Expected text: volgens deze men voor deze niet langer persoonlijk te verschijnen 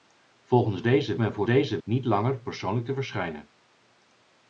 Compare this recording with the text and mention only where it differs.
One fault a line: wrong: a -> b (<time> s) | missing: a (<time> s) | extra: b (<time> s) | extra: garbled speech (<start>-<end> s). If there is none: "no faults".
no faults